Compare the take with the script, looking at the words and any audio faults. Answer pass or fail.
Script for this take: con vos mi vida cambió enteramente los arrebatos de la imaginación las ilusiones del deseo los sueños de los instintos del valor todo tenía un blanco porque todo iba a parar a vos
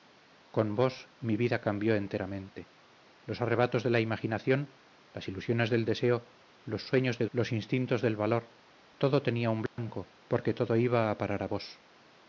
fail